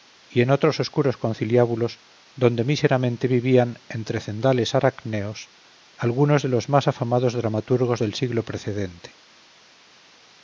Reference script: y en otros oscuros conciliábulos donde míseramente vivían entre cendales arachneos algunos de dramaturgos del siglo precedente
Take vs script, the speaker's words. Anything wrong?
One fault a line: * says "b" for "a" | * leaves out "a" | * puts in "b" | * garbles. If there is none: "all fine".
* puts in "los más afamados"